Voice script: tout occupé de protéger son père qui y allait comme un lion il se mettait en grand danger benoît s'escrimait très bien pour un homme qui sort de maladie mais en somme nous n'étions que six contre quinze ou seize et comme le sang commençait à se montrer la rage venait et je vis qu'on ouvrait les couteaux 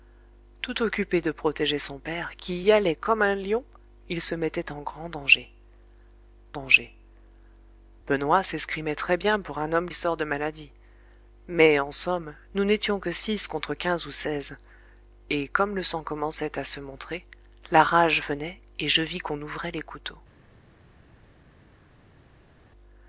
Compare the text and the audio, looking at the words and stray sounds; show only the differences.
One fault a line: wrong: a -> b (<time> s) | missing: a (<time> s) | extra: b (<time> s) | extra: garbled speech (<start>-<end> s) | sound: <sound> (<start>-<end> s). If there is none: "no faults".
extra: danger (6.5 s)
missing: qui (9.9 s)